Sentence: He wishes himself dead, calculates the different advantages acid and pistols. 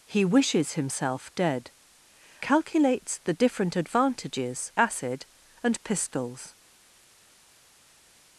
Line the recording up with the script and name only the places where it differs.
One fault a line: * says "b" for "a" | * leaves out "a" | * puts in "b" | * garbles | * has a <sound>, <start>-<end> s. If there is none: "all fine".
all fine